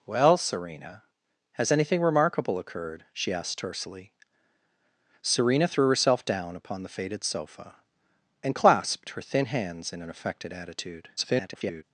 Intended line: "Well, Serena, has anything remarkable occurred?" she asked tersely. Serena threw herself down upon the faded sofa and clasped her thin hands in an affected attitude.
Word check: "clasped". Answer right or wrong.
right